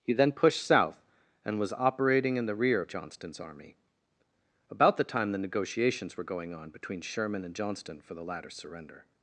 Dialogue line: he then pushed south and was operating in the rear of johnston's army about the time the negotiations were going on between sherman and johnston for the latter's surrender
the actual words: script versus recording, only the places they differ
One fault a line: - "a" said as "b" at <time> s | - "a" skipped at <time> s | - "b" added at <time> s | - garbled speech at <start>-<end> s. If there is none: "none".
none